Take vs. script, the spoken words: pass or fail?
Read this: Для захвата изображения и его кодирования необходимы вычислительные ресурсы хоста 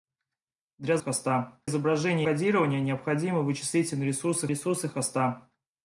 fail